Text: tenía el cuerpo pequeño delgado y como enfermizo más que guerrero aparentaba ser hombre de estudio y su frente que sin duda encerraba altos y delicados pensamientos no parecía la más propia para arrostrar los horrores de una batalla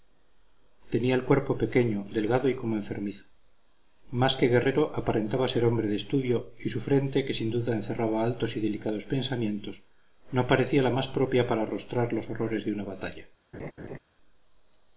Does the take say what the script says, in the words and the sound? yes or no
no